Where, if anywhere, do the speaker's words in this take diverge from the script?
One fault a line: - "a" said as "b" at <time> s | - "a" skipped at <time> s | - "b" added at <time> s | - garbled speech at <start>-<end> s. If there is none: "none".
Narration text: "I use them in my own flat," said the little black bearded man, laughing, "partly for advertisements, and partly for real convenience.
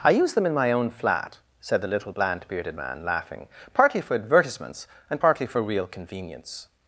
- "black" said as "bland" at 2.1 s